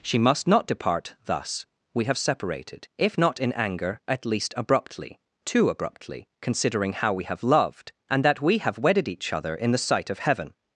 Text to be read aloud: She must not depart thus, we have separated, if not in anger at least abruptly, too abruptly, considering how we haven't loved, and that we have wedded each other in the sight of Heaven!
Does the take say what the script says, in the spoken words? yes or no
no